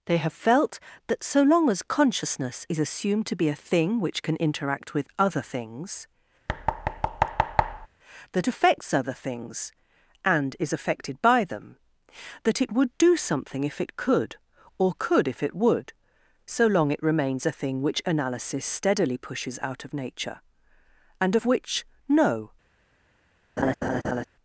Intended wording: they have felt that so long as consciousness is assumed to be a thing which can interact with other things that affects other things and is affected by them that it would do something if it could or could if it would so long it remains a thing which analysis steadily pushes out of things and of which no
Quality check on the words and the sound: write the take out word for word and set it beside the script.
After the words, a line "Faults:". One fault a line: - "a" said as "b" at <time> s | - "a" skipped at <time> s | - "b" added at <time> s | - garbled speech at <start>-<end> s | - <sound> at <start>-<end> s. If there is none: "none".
they have felt that so long as consciousness is assumed to be a thing which can interact with other things that affects other things and is affected by them that it would do something if it could or could if it would so long it remains a thing which analysis steadily pushes out of nature and of which no
Faults:
- thud at 6.5-7.9 s
- "things" said as "nature" at 19.9 s
- laugh at 23.6-24.3 s